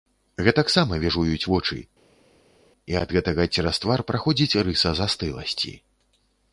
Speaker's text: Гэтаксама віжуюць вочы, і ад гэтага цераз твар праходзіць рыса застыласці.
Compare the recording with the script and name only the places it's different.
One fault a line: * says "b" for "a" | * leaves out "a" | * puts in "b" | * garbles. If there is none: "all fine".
all fine